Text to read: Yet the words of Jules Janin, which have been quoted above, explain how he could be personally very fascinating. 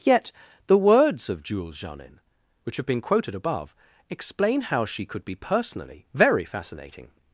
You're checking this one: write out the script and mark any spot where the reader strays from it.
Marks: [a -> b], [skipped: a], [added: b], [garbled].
Yet the words of Jules Janin, which have been quoted above, explain how [he -> she] could be personally very fascinating.